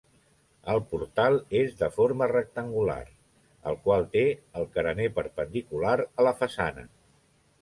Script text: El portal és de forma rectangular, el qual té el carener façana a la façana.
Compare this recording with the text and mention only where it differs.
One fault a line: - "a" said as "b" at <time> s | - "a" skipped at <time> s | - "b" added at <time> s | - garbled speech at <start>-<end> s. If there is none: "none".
- "façana" said as "perpendicular" at 5.2 s